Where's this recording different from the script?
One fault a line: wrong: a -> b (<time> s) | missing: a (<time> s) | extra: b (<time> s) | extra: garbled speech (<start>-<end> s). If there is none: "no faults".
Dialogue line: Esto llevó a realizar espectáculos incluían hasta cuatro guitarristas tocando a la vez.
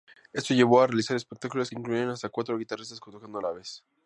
no faults